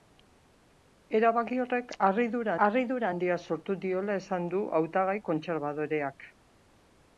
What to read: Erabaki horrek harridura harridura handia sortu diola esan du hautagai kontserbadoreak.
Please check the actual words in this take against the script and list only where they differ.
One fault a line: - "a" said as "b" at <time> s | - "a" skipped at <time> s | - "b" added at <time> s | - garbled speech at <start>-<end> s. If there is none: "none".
none